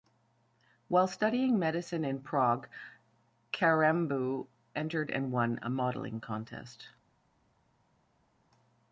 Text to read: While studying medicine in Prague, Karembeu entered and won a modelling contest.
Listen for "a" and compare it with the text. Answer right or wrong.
right